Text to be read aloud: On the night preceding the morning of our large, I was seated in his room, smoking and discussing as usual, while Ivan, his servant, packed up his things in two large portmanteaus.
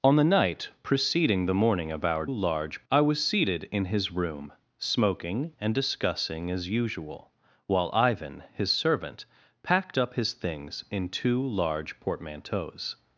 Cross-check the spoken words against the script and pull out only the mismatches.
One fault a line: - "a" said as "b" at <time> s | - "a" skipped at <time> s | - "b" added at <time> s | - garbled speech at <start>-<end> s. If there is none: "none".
none